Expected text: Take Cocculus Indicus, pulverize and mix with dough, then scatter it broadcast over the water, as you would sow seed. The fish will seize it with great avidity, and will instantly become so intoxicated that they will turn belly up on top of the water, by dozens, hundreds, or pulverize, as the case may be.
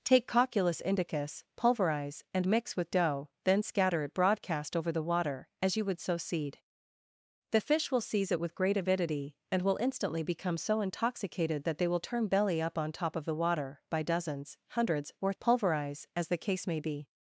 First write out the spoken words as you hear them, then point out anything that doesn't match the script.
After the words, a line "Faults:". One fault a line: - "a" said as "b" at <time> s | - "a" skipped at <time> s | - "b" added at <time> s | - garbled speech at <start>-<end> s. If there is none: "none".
Take Cocculus Indicus, pulverize and mix with dough, then scatter it broadcast over the water, as you would sow seed. The fish will seize it with great avidity, and will instantly become so intoxicated that they will turn belly up on top of the water, by dozens, hundreds, or pulverize, as the case may be.
Faults:
none